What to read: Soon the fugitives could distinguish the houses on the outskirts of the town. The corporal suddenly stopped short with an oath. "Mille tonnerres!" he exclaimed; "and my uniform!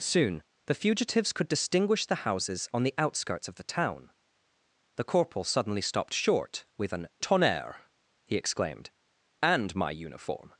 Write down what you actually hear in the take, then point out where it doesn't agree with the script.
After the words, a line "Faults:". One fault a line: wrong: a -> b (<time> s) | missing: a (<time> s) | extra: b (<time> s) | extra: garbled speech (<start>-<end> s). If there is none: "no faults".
Soon the fugitives could distinguish the houses on the outskirts of the town. The corporal suddenly stopped short with an tonnerres!" he exclaimed; "and my uniform!
Faults:
missing: oath Mille (7.1 s)